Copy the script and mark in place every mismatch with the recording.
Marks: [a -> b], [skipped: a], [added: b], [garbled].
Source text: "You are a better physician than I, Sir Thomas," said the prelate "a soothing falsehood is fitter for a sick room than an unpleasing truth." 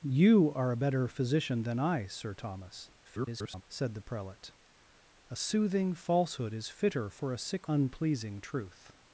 "You are a better physician than I, Sir Thomas," [garbled] said the prelate "a soothing falsehood is fitter for a sick [skipped: room than an] unpleasing truth."